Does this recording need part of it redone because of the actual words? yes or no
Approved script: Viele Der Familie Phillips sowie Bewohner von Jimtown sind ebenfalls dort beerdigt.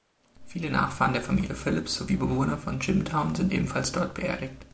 yes